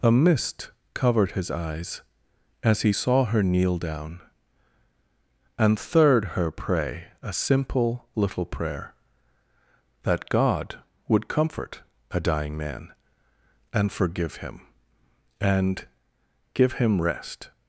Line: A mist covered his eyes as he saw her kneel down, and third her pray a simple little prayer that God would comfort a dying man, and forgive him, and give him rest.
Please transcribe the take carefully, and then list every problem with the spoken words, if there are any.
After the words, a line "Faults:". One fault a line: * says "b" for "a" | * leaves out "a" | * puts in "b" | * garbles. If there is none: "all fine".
A mist covered his eyes as he saw her kneel down, and third her pray a simple little prayer that God would comfort a dying man, and forgive him, and give him rest.
Faults:
all fine